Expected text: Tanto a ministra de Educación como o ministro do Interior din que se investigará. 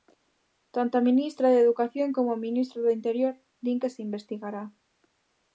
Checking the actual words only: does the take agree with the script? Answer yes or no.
yes